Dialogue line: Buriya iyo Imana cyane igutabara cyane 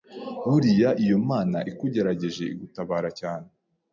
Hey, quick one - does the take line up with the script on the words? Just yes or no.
no